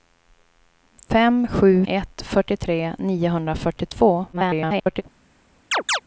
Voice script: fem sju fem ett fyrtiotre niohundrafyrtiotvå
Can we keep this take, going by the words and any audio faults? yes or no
no